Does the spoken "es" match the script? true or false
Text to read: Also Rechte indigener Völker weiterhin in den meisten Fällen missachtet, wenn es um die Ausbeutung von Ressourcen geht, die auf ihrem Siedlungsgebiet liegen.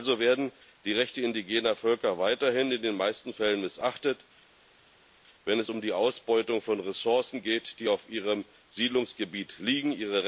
true